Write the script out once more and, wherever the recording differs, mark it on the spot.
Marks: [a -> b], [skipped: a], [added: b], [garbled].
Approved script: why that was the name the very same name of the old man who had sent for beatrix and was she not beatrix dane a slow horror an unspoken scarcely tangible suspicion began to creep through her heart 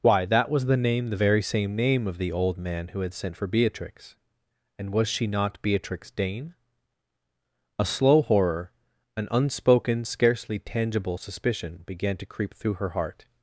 why that was the name the very same name of the old man who had sent for beatrix and was she not beatrix dane a slow horror an unspoken scarcely tangible suspicion began to creep through her heart